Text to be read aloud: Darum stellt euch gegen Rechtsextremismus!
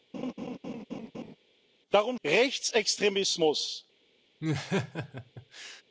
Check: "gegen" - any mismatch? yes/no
yes